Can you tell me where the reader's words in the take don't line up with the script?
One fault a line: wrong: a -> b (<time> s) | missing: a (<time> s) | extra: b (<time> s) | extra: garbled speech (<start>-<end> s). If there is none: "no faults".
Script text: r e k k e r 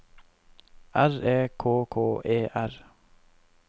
no faults